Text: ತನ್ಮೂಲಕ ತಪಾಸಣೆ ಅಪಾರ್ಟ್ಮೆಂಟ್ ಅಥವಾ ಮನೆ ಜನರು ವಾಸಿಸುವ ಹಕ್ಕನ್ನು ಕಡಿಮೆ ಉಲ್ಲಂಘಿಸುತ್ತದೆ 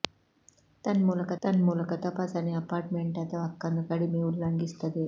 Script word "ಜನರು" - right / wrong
wrong